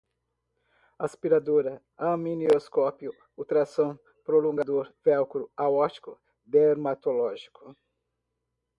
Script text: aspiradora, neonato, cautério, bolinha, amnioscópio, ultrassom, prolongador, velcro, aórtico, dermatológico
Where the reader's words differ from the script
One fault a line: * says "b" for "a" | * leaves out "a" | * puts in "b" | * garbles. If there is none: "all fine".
* leaves out "neonato cautério bolinha"